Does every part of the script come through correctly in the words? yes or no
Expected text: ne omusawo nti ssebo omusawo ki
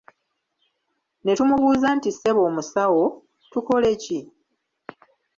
no